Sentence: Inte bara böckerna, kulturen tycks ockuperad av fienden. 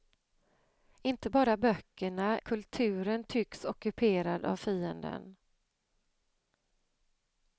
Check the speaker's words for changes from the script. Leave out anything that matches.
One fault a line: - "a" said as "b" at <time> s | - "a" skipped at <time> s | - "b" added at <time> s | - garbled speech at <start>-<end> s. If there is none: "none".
none